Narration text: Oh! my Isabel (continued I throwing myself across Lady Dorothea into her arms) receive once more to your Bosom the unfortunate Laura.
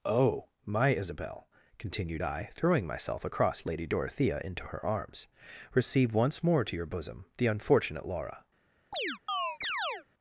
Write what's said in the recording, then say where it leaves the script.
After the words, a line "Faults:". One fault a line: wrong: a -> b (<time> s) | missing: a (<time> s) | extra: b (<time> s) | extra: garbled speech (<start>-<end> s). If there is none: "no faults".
Oh! my Isabel (continued I throwing myself across Lady Dorothea into her arms) receive once more to your Bosom the unfortunate Laura.
Faults:
no faults